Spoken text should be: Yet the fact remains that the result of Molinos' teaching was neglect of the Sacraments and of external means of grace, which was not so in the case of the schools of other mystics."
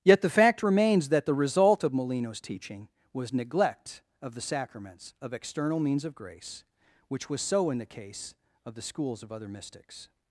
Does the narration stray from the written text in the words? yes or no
yes